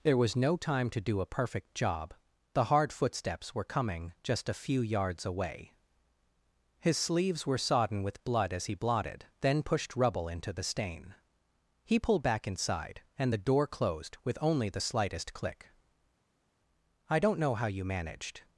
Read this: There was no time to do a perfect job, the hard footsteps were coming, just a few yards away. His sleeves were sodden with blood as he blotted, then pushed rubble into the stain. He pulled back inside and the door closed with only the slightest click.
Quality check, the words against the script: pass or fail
fail